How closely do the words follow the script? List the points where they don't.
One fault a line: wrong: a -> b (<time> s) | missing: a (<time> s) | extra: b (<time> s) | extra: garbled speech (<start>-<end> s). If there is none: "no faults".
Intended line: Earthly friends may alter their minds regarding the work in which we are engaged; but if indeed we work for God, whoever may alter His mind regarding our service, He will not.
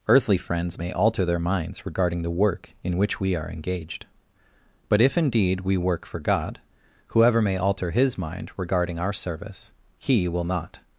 no faults